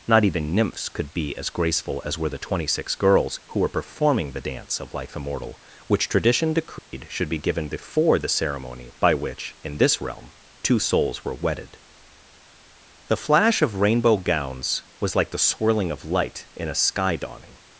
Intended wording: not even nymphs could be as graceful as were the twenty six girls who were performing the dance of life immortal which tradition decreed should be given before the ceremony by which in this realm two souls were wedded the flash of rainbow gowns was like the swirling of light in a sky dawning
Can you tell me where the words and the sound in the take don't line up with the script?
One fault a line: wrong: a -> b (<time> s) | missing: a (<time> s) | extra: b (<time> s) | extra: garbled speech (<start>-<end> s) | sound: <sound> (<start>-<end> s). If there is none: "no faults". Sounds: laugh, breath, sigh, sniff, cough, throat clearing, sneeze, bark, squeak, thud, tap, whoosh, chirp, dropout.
sound: dropout (6.8-6.9 s)